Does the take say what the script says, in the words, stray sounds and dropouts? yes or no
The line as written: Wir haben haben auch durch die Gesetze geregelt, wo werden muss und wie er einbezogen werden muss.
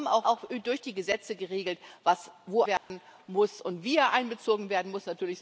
no